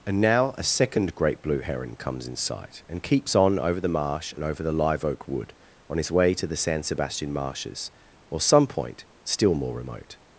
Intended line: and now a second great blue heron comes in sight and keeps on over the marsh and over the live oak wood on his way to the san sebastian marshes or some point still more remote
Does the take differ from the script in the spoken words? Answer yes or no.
no